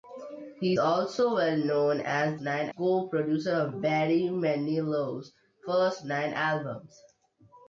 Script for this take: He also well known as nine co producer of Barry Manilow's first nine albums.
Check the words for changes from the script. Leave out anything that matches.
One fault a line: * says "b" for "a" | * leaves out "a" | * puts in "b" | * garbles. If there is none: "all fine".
all fine